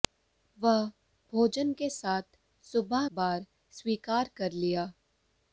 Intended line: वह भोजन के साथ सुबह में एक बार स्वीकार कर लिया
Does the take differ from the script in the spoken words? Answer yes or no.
yes